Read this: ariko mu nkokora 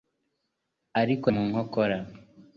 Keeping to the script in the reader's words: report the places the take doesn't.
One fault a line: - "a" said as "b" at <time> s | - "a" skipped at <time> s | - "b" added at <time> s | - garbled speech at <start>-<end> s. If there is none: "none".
none